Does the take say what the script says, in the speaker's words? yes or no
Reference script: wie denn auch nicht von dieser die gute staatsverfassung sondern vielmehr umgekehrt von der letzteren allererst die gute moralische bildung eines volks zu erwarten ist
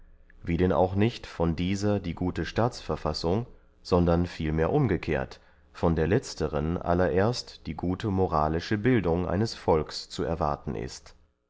yes